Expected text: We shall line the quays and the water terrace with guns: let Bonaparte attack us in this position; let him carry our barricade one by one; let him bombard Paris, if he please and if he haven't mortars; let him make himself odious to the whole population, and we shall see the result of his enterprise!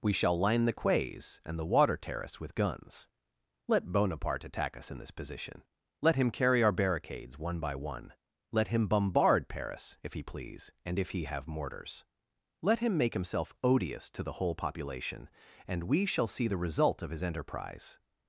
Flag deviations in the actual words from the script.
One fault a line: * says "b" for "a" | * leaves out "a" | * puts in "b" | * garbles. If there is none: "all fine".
* says "barricades" for "barricade"
* says "have" for "haven't"